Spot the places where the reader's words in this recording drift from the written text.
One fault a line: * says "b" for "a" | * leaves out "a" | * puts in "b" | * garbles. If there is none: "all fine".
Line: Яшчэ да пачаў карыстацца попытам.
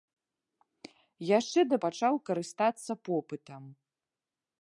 all fine